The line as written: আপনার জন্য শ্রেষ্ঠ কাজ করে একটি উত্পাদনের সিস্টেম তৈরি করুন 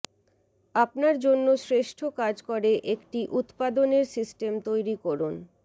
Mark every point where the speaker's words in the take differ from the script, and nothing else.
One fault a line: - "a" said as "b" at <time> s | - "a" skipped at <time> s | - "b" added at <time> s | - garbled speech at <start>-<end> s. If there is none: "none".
none